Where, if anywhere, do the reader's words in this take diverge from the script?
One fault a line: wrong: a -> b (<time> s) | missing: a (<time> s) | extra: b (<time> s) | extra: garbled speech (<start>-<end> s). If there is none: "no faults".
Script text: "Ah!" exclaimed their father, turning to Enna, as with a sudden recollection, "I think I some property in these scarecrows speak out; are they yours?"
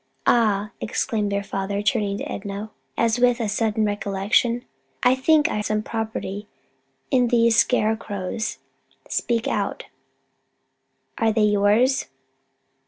no faults